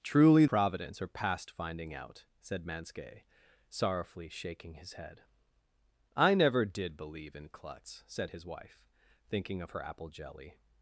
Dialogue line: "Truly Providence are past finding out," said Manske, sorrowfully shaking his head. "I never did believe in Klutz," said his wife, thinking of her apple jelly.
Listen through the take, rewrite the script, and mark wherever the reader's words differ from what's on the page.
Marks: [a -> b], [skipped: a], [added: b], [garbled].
"Truly Providence are past finding out," said Manske, sorrowfully shaking his head. "I never did believe in Klutz," said his wife, thinking of her apple jelly.